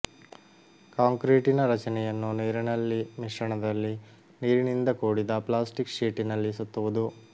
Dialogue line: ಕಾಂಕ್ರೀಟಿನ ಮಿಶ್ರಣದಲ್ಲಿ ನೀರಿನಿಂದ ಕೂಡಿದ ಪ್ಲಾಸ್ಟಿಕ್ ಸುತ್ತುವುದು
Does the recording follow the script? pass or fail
fail